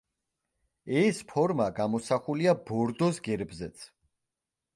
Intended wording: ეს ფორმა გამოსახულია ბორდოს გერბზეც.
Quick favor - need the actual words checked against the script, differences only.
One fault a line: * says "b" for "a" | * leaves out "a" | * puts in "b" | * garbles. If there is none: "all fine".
all fine